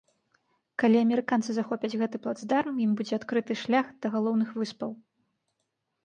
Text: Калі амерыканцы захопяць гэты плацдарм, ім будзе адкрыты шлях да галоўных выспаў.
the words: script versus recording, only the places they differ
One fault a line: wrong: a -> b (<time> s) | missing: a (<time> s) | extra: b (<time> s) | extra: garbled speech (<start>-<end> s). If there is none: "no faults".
no faults